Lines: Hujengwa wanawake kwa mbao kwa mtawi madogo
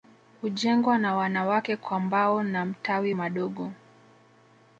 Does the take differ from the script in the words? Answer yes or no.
yes